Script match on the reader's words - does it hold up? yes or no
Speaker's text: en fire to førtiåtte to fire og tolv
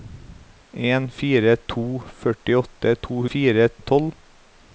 yes